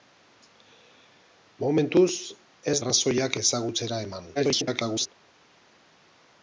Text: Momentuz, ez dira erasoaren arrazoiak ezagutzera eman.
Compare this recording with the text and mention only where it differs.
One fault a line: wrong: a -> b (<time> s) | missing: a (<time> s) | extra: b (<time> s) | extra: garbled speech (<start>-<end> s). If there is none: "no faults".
missing: dira erasoaren (2.8 s)
extra: garbled speech (4.4-5.1 s)